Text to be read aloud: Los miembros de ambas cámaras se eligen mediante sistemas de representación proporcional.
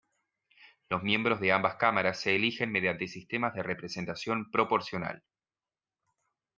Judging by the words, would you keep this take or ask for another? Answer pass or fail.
pass